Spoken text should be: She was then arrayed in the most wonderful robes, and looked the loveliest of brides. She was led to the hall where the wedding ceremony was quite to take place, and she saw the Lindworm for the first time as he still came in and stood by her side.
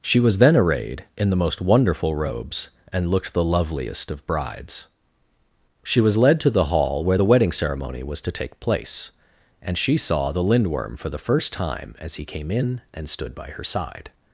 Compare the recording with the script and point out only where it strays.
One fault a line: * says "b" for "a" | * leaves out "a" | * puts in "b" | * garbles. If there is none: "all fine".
* leaves out "quite"
* leaves out "still"